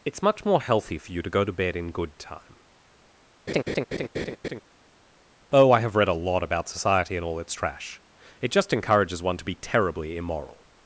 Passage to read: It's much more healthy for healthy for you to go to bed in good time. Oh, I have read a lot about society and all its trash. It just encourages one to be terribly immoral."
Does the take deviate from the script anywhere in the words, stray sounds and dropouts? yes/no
yes